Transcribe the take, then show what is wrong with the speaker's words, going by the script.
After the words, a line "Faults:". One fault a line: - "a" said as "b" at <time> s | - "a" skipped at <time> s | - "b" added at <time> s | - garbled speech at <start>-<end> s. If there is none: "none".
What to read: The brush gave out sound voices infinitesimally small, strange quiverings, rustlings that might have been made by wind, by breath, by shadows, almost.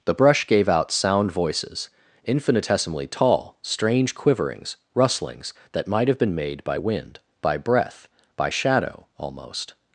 The brush gave out sound voices infinitesimally tall, strange quiverings, rustlings that might have been made by wind, by breath, by shadow, almost.
Faults:
- "small" said as "tall" at 3.1 s
- "shadows" said as "shadow" at 8.5 s